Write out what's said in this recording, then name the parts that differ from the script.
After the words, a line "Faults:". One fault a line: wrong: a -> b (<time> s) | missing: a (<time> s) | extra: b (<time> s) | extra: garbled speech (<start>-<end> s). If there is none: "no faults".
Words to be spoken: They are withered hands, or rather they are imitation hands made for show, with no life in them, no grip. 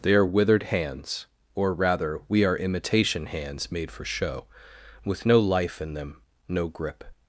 They are withered hands, or rather we are imitation hands made for show, with no life in them, no grip.
Faults:
wrong: they -> we (2.3 s)